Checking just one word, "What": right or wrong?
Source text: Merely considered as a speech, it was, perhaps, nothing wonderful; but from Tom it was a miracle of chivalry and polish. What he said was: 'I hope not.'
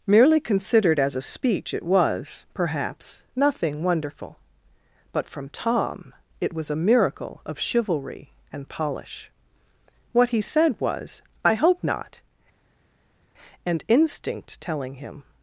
right